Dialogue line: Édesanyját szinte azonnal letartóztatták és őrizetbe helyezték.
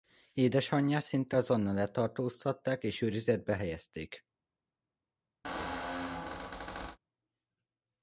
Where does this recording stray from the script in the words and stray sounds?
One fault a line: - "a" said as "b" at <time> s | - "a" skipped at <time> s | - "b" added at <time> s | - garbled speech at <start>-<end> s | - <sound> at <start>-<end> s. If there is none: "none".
- squeak at 5.4-7.0 s